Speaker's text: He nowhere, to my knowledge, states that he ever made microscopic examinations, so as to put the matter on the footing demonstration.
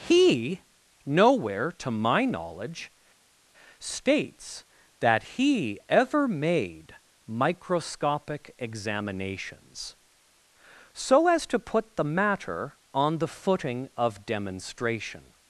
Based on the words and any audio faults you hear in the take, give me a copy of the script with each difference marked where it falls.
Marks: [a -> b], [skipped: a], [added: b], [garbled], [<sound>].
He nowhere, to my knowledge, states that he ever made microscopic examinations, so as to put the matter on the footing [added: of] demonstration.